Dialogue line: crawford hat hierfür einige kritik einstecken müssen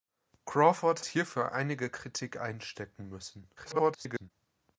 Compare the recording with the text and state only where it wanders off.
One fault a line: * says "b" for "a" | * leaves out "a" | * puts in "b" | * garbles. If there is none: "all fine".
* leaves out "hat"
* garbles